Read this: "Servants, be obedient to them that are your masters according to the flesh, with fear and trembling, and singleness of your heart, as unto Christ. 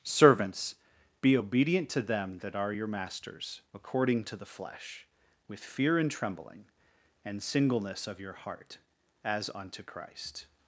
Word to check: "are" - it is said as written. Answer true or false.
true